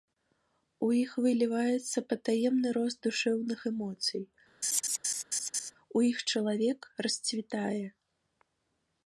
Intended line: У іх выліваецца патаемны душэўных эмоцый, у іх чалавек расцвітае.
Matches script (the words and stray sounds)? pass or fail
fail